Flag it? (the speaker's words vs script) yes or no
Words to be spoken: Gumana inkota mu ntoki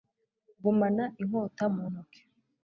no